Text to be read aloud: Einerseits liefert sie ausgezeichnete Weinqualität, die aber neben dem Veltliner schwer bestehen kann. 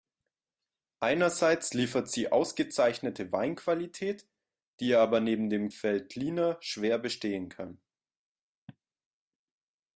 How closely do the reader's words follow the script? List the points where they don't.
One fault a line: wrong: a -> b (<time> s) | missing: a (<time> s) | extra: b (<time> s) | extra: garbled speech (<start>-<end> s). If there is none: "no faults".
no faults